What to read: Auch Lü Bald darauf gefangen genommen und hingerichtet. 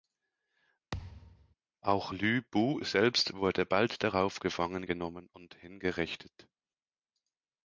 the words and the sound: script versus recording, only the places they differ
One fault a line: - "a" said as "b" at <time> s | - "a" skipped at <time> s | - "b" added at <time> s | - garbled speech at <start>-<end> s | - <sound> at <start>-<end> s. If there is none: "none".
- thud at 0.9-1.5 s
- "Bu selbst wurde" added at 2.4 s